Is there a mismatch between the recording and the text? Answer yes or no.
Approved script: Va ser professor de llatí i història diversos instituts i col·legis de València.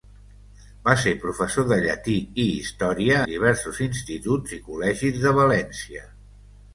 no